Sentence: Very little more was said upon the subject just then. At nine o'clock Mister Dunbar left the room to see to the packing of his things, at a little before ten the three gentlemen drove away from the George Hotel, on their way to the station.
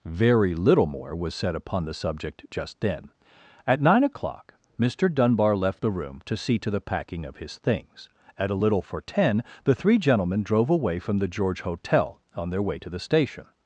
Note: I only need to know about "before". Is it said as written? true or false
false